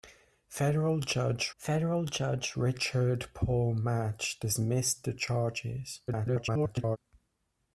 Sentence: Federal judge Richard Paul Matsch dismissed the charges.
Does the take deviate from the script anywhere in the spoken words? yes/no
yes